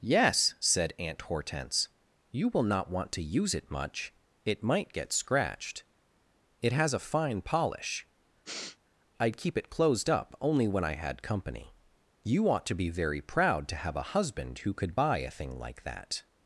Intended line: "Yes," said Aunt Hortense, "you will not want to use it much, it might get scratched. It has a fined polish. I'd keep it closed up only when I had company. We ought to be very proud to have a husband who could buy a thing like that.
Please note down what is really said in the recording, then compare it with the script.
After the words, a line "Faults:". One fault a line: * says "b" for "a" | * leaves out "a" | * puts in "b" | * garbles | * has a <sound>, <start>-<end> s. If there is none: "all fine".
"Yes," said Aunt Hortense, "you will not want to use it much, it might get scratched. It has a fine polish. I'd keep it closed up only when I had company. You ought to be very proud to have a husband who could buy a thing like that.
Faults:
* says "fine" for "fined"
* has a sniff, 8.4-8.8 s
* says "You" for "We"